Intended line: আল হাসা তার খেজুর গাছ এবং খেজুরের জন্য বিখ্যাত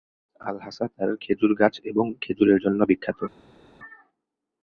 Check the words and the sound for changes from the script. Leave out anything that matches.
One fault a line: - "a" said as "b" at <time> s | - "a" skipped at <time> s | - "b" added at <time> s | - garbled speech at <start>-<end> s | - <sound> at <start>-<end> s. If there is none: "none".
none